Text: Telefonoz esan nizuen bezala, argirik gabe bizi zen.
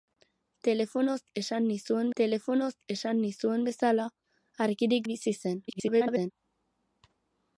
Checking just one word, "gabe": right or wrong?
wrong